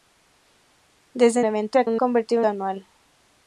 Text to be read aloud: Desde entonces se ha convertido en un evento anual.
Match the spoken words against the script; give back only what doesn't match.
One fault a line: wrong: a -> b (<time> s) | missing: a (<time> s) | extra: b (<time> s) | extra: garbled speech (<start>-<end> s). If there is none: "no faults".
wrong: entonces -> evento (1.4 s)
missing: convertido (1.9 s)
wrong: evento -> convertido (1.9 s)